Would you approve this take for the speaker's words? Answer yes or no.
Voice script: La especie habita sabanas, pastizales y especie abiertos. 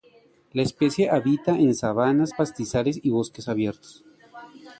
no